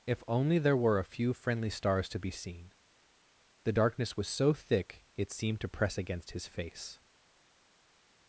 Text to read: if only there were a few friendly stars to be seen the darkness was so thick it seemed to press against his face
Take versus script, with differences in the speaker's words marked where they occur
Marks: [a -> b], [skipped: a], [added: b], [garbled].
if only there were a few friendly stars to be seen the darkness was so thick it seemed to press against his face